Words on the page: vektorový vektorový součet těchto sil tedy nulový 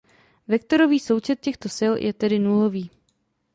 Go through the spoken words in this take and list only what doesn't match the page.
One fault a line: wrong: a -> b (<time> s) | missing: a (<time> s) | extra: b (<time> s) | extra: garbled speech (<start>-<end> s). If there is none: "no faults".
missing: vektorový (1.0 s)
extra: je (2.0 s)